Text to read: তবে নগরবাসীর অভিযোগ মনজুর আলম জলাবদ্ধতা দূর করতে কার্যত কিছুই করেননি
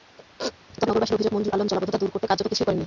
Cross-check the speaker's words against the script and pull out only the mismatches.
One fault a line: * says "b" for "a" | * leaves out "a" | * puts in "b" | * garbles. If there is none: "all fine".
all fine